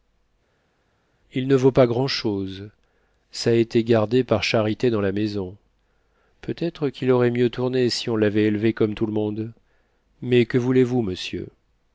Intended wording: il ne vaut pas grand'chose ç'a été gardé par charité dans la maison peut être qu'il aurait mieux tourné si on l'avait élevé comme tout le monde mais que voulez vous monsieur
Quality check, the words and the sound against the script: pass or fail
pass